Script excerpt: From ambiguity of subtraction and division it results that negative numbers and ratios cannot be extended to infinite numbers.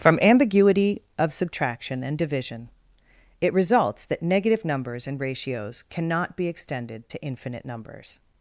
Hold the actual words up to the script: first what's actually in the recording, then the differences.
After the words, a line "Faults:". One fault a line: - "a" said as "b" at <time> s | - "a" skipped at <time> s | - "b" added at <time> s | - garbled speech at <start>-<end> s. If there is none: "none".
From ambiguity of subtraction and division it results that negative numbers and ratios cannot be extended to infinite numbers.
Faults:
none